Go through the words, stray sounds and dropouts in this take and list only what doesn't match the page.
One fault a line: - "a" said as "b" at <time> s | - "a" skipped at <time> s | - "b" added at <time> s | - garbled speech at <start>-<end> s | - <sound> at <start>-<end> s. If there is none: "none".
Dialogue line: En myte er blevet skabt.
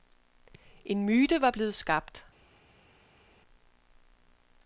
- "er" said as "var" at 1.4 s